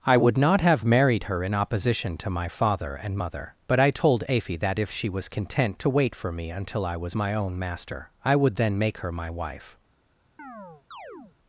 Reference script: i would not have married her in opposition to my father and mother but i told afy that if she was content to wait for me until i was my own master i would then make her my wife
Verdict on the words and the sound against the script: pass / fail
fail